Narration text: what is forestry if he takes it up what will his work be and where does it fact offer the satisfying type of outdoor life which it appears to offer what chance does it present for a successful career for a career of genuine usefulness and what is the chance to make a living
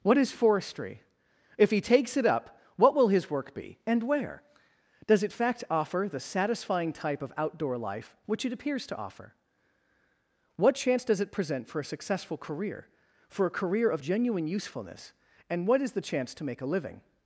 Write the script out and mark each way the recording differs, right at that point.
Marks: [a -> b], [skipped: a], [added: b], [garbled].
what is forestry if he takes it up what will his work be and where does it fact offer the satisfying type of outdoor life which it appears to offer what chance does it present for a successful career for a career of genuine usefulness and what is the chance to make a living